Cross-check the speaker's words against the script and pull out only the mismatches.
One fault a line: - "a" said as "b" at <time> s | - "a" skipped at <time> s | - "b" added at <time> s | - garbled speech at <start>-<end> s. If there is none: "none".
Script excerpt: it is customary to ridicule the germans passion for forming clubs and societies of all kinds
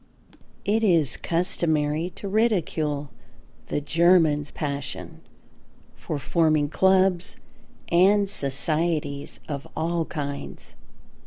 none